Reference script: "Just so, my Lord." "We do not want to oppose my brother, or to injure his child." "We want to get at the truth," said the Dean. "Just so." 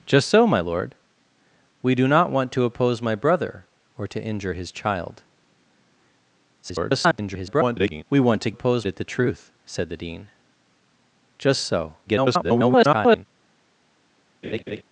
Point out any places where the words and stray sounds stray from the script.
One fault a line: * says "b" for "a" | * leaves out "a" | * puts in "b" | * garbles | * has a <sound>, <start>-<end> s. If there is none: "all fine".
* garbles
* says "oppose" for "get"
* garbles
* has a laugh, 14.4-14.8 s